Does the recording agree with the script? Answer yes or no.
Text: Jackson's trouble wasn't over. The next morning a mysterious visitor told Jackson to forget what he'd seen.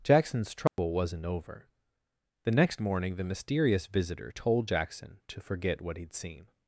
no